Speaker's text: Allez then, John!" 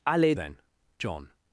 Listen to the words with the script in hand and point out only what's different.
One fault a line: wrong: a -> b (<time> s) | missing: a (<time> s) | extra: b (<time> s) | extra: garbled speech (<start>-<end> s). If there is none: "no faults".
no faults